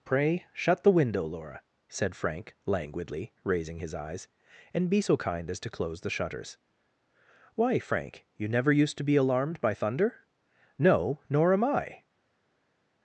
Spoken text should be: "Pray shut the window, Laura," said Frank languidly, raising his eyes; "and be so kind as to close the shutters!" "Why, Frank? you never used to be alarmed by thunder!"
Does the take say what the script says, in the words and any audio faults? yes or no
no